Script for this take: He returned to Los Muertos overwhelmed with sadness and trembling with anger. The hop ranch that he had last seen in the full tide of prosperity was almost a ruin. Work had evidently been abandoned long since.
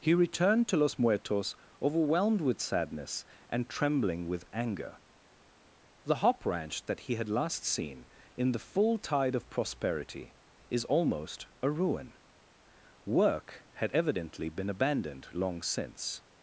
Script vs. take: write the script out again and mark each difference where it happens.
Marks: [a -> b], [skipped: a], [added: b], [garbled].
He returned to Los Muertos overwhelmed with sadness and trembling with anger. The hop ranch that he had last seen in the full tide of prosperity [was -> is] almost a ruin. Work had evidently been abandoned long since.